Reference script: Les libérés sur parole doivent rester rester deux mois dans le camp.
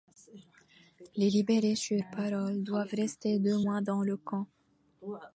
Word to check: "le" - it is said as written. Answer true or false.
true